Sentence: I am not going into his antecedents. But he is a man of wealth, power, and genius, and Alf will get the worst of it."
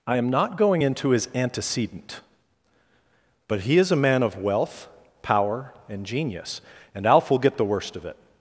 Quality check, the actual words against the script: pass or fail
fail